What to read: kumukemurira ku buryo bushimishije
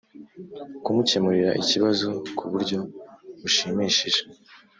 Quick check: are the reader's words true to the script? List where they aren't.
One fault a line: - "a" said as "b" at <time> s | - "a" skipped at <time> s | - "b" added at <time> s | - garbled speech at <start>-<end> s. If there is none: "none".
- "ikibazo" added at 1.6 s